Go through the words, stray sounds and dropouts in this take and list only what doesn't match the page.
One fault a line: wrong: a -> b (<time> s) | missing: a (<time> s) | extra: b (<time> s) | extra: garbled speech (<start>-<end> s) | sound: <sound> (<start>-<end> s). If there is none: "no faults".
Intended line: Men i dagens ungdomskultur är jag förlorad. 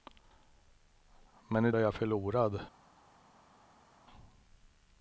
missing: dagens ungdomskultur (1.7 s)